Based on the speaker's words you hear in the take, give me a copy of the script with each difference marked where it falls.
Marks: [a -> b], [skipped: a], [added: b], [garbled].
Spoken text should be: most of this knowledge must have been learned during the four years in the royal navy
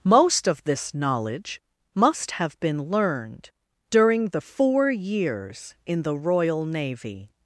most of this knowledge must have been learned during the four years in the royal navy